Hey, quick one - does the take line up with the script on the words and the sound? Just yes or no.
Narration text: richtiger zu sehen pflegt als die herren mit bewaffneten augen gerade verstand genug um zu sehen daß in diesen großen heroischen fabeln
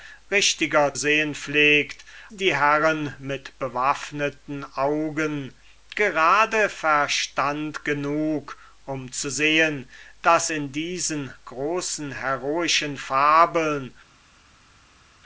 no